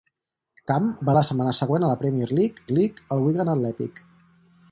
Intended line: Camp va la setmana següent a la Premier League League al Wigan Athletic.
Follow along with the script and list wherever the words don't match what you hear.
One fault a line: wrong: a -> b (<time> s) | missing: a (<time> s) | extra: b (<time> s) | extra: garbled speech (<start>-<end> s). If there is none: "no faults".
no faults